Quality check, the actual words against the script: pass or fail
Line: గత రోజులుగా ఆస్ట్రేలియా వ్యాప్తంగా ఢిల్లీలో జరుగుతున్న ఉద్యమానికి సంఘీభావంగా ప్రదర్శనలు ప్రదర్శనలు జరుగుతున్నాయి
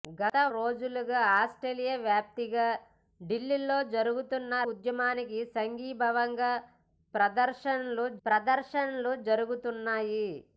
pass